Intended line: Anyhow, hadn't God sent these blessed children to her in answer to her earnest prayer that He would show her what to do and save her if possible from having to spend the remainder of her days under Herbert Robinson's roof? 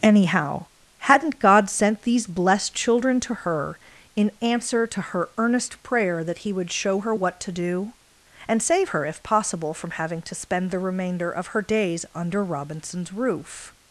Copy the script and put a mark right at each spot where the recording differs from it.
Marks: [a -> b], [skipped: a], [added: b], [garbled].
Anyhow, hadn't God sent these blessed children to her in answer to her earnest prayer that He would show her what to do and save her if possible from having to spend the remainder of her days under [skipped: Herbert] Robinson's roof?